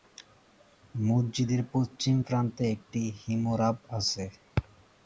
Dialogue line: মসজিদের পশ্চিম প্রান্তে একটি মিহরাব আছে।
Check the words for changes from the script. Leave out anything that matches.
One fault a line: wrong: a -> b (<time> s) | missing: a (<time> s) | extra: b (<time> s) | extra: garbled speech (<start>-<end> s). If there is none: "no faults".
no faults